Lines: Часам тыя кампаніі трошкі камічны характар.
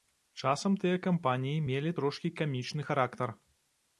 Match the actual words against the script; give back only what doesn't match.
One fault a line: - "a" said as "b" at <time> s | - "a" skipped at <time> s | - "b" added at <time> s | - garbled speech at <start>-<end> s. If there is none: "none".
- "мелі" added at 1.7 s